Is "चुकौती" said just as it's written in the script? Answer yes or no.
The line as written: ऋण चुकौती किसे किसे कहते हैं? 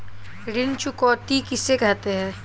yes